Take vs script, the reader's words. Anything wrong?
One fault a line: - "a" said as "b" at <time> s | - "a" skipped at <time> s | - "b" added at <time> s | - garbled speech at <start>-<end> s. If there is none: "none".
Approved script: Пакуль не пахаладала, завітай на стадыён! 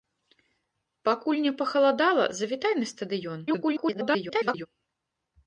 - garbled speech at 3.5-4.7 s